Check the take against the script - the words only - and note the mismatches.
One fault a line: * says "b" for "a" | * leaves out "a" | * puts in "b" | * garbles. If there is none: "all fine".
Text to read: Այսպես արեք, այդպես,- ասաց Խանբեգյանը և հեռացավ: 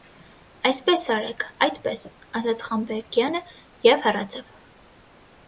all fine